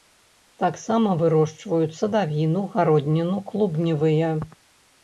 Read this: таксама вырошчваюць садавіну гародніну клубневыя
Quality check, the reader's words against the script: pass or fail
pass